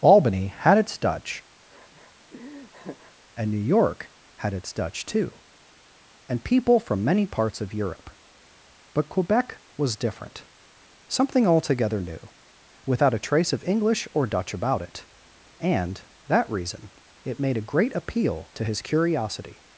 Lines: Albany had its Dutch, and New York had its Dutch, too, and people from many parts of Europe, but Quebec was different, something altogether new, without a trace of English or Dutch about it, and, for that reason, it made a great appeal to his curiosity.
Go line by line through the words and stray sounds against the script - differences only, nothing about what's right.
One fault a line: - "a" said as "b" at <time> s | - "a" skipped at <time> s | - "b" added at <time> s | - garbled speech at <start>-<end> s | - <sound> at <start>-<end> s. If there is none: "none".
- laugh at 1.7-3.1 s
- "for" skipped at 16.0 s